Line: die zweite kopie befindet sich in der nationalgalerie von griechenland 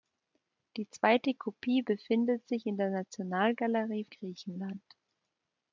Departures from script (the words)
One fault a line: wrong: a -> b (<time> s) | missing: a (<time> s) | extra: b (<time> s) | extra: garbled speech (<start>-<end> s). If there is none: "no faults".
missing: von (4.0 s)